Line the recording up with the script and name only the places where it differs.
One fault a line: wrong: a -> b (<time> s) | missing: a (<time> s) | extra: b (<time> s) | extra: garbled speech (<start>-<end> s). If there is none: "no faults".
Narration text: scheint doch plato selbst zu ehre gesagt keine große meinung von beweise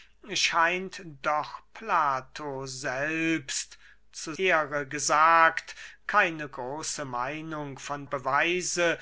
no faults